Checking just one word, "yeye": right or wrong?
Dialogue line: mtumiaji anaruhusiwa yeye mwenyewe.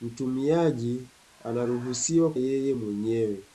right